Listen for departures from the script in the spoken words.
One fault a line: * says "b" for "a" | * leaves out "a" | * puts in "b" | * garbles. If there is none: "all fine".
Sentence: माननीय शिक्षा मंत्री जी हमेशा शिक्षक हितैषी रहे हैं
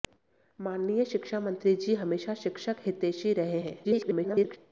* garbles